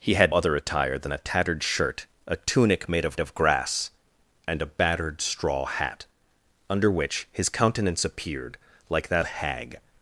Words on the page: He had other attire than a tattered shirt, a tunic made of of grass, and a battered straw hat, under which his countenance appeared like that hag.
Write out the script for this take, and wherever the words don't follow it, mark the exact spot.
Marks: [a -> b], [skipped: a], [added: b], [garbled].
He had other attire than a tattered shirt, a tunic made of of grass, and a battered straw hat, under which his countenance appeared like that hag.